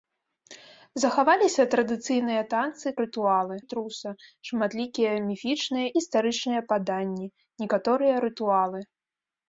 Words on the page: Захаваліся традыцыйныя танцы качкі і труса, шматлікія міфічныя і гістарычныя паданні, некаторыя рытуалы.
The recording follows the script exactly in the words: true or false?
false